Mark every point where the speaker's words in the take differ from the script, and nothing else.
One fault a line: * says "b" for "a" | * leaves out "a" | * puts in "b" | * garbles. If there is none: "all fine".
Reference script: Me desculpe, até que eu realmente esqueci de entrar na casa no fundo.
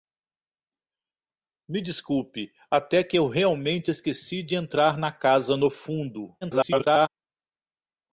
* garbles